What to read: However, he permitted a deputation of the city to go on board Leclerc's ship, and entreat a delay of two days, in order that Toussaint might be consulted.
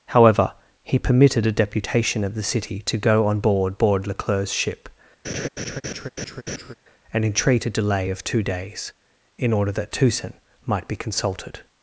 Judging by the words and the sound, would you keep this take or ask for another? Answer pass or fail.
fail